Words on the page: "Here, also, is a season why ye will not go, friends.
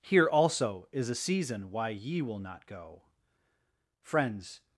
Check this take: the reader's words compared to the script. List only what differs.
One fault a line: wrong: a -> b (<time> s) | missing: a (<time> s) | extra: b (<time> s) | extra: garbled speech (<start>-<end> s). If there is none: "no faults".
no faults